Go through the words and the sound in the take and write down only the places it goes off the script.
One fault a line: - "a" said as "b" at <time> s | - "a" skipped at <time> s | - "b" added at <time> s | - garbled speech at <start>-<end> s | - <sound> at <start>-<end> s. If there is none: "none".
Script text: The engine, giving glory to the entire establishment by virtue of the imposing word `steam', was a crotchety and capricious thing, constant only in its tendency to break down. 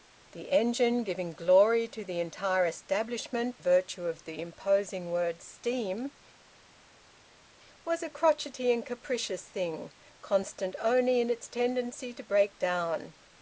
- "by" skipped at 3.6 s